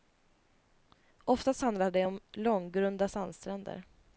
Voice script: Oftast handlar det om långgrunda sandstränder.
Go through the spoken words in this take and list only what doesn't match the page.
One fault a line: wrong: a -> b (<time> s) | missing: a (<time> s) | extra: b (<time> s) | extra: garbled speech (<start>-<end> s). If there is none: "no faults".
no faults